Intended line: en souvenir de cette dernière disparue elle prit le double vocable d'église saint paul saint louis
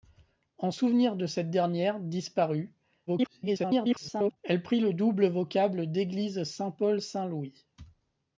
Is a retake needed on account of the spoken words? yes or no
yes